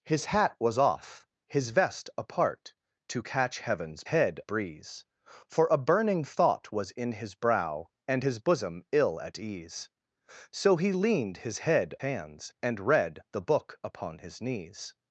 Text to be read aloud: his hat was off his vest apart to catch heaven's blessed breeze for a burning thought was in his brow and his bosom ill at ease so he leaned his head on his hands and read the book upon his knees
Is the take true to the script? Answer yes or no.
no